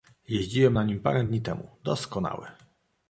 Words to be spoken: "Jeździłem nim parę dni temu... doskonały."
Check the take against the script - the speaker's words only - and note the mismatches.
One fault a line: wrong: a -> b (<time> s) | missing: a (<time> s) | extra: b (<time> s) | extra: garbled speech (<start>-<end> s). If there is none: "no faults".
extra: na (0.7 s)